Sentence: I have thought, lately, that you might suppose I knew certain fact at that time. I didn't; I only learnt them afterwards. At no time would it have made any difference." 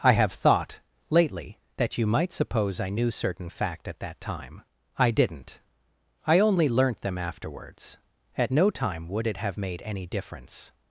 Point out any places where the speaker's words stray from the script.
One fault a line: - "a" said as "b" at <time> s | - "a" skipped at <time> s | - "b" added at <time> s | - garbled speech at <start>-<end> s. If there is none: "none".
none